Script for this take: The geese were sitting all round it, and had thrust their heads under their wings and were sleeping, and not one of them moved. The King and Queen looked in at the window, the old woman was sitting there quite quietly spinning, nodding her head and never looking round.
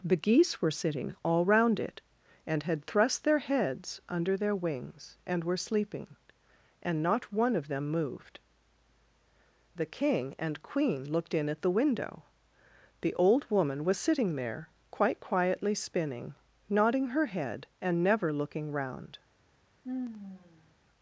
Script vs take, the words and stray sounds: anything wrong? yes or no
yes